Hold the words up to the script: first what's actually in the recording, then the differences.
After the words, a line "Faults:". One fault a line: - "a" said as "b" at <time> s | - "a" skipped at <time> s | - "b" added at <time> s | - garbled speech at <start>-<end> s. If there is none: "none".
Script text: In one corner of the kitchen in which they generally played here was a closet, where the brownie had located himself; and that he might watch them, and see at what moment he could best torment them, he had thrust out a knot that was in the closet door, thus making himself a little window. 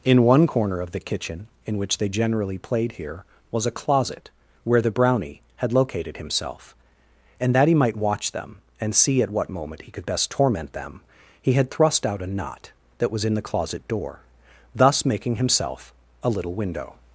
In one corner of the kitchen in which they generally played here was a closet, where the brownie had located himself; and that he might watch them, and see at what moment he could best torment them, he had thrust out a knot that was in the closet door, thus making himself a little window.
Faults:
none